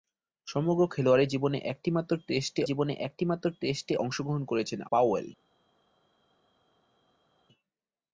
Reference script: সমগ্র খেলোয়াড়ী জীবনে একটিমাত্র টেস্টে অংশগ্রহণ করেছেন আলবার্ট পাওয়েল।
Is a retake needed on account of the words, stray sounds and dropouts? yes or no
yes